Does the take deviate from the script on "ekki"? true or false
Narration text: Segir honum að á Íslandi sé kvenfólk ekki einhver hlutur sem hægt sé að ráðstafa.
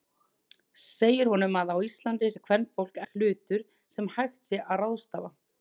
true